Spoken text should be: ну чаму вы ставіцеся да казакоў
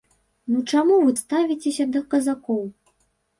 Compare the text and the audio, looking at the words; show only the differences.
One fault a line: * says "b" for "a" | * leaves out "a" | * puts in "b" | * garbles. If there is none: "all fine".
all fine